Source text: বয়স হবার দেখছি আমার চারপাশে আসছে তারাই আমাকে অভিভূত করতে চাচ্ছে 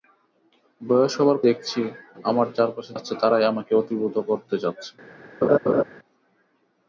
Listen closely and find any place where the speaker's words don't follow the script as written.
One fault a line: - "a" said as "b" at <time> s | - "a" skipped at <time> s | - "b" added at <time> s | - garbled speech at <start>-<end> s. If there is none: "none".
none